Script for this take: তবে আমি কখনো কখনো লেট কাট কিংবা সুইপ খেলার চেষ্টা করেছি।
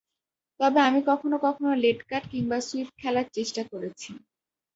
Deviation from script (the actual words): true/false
false